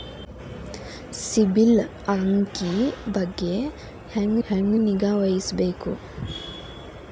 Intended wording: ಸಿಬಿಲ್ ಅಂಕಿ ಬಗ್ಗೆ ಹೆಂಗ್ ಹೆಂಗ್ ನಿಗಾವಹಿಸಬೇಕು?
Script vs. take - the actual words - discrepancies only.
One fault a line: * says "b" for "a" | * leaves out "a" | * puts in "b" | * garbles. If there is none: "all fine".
all fine